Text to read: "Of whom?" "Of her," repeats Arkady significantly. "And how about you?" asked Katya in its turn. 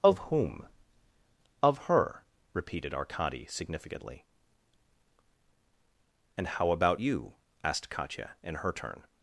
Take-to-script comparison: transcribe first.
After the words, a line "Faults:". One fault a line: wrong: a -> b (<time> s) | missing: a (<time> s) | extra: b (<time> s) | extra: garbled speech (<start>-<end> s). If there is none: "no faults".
"Of whom?" "Of her," repeated Arkady significantly. "And how about you?" asked Katya in her turn.
Faults:
wrong: repeats -> repeated (2.5 s)
wrong: its -> her (8.5 s)